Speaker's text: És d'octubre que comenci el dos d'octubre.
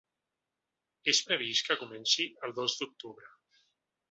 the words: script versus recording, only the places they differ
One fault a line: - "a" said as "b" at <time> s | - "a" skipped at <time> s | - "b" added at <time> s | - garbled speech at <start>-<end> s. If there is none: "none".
- "d'octubre" said as "previst" at 1.2 s